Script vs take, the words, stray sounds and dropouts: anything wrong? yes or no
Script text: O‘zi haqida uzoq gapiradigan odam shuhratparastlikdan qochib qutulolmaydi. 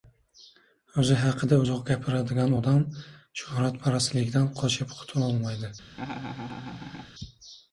yes